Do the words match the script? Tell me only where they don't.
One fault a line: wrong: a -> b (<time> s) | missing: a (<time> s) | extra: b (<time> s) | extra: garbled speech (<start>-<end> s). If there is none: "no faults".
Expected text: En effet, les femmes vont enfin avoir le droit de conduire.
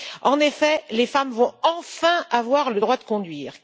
no faults